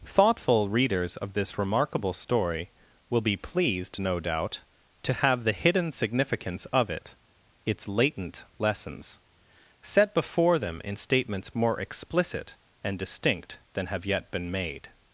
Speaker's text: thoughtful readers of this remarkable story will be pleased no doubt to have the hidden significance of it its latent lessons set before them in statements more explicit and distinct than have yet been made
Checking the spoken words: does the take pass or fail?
pass